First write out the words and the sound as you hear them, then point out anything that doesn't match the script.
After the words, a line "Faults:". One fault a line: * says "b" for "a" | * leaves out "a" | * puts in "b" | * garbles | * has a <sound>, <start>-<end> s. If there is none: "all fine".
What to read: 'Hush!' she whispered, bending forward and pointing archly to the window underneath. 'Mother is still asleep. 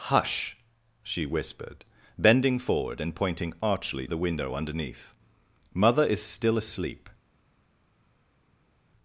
'Hush!' she whispered, bending forward and pointing archly the window underneath. 'Mother is still asleep.
Faults:
* leaves out "to"